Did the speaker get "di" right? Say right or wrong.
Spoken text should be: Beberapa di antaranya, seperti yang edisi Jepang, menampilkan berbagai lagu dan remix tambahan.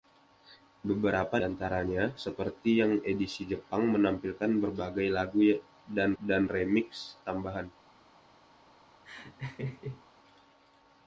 wrong